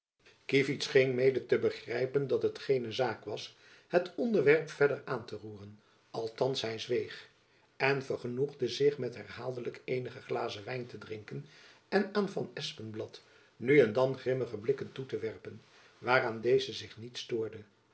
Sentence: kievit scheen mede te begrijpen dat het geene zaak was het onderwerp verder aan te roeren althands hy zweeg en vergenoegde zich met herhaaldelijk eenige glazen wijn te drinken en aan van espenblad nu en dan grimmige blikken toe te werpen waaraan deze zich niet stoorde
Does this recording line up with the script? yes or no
yes